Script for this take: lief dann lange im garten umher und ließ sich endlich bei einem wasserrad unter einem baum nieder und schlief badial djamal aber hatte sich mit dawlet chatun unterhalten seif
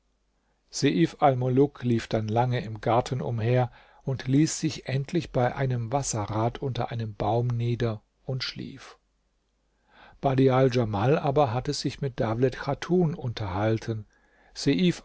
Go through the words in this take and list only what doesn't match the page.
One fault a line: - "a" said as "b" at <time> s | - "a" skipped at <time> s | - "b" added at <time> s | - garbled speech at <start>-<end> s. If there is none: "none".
none